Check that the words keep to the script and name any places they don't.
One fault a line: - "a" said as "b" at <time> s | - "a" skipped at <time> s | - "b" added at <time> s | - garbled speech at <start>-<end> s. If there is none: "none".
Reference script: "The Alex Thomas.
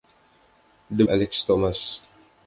none